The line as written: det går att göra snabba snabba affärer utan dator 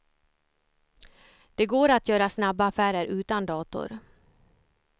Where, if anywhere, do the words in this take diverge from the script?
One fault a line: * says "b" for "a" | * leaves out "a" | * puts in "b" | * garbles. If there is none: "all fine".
* leaves out "snabba"